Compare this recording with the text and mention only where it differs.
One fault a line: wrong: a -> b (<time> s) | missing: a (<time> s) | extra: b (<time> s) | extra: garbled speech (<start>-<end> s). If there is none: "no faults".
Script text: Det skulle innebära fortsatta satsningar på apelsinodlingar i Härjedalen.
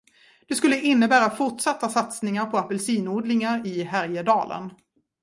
no faults